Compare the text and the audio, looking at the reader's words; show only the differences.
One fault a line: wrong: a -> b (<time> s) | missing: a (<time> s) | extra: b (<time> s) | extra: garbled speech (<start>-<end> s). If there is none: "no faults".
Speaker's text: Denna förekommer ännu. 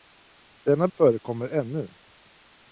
no faults